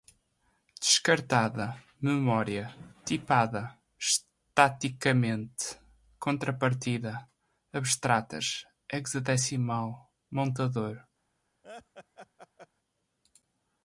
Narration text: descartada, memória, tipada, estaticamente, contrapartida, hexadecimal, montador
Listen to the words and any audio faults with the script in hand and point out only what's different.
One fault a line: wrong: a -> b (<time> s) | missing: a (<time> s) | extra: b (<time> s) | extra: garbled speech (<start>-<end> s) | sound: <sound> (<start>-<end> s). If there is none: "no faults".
extra: abstratas (7.7 s)
sound: laugh (11.6-12.7 s)